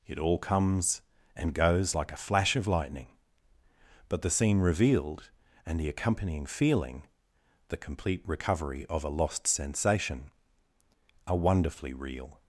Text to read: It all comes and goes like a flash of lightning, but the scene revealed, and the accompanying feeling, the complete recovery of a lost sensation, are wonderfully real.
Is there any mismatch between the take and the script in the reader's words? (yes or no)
no